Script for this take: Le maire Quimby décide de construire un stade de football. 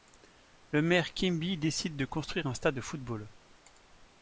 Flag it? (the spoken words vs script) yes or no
no